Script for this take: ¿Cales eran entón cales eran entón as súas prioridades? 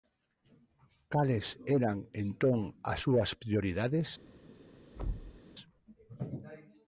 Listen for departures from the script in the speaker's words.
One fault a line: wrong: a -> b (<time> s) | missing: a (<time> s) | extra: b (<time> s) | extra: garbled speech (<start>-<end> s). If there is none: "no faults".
missing: cales eran entón (2.6 s)